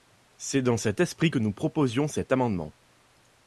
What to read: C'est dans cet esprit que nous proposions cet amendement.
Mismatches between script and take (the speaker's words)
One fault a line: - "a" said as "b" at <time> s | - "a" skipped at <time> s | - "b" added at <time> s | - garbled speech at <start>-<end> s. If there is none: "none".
none